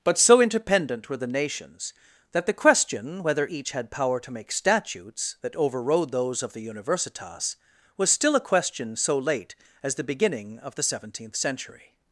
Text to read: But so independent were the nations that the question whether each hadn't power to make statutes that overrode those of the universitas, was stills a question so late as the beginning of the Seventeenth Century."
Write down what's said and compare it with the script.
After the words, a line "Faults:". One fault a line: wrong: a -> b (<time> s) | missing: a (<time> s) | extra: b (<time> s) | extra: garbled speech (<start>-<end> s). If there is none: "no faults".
But so independent were the nations that the question whether each had power to make statutes that overrode those of the universitas, was still a question so late as the beginning of the Seventeenth Century."
Faults:
wrong: hadn't -> had (3.7 s)
wrong: stills -> still (8.1 s)